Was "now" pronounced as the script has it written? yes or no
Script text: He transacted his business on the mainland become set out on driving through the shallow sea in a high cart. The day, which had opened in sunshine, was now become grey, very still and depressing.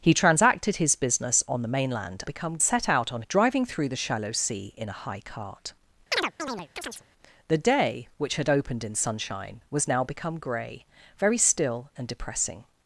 yes